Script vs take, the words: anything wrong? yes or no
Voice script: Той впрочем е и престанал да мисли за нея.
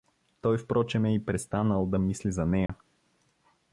no